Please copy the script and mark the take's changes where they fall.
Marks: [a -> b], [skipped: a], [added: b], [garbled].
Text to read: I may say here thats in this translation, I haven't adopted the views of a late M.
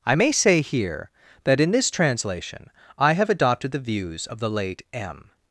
I may say here [thats -> that] in this translation, I [haven't -> have] adopted the views of [a -> the] late M.